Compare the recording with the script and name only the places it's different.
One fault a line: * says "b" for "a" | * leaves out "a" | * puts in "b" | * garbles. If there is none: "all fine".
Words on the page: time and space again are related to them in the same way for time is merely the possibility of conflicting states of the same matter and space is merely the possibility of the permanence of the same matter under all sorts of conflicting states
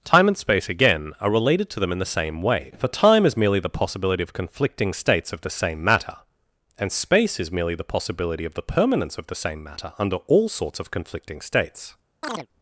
all fine